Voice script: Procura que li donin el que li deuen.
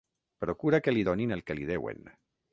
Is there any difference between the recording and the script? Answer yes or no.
no